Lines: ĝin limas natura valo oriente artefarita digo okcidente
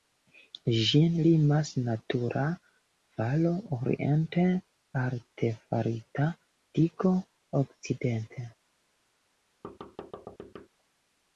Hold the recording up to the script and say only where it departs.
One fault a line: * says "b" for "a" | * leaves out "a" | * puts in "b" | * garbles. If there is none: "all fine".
all fine